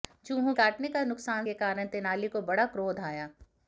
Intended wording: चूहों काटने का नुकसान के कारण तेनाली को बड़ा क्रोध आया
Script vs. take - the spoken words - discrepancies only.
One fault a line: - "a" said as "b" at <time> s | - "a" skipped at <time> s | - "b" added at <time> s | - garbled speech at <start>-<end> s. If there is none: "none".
none